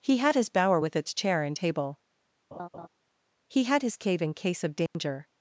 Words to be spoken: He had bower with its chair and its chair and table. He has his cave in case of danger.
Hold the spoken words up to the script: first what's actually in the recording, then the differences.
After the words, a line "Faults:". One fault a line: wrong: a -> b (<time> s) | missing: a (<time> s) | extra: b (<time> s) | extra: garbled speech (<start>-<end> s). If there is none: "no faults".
He had his bower with its chair and table. He had his cave in case of danger.
Faults:
extra: his (0.3 s)
missing: its chair and (1.6 s)
wrong: has -> had (3.6 s)